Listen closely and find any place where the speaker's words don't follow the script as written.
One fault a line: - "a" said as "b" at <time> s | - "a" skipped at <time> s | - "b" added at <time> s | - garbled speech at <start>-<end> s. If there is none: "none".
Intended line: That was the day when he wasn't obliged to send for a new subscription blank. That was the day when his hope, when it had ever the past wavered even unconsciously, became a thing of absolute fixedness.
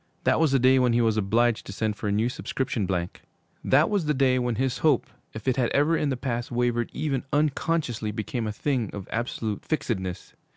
- "wasn't" said as "was" at 1.0 s
- "when" said as "if" at 5.3 s
- "in" added at 6.0 s